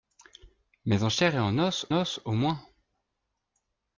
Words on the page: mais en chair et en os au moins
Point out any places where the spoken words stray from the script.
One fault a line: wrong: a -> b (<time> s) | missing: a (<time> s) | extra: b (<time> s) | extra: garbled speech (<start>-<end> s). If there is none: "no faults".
extra: os (1.9 s)